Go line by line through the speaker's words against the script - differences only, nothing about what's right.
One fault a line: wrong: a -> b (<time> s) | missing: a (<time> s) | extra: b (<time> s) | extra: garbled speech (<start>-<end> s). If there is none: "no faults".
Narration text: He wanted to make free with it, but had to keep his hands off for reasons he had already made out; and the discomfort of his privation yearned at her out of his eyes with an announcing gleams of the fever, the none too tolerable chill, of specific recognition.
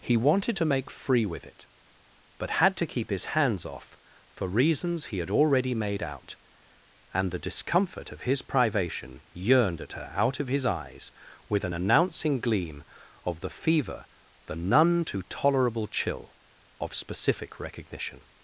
wrong: gleams -> gleam (12.4 s)